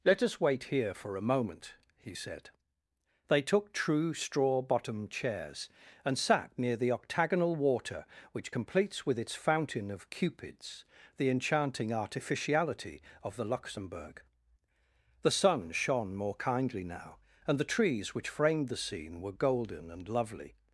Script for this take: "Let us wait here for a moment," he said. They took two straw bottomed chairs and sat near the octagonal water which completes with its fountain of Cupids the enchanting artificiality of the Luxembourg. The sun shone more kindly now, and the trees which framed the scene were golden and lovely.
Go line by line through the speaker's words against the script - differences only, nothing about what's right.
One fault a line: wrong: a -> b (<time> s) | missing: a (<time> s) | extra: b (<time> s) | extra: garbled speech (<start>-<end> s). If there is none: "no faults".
wrong: two -> true (3.7 s)